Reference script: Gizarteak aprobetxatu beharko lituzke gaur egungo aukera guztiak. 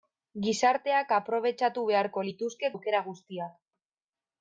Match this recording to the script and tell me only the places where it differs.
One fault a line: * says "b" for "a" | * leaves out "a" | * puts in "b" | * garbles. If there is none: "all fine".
* leaves out "gaur egungo"